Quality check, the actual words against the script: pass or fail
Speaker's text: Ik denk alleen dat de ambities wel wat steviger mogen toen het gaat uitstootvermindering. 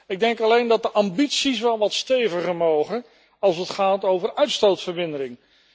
fail